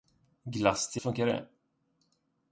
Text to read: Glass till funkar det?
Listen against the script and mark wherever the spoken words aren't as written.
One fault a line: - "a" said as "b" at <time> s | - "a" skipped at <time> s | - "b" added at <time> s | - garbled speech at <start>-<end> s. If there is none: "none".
none